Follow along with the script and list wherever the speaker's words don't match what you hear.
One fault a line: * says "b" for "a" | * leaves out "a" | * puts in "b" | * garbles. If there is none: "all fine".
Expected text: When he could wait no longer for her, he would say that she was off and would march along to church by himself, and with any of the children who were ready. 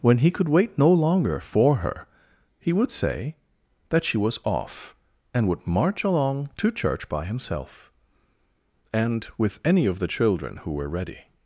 all fine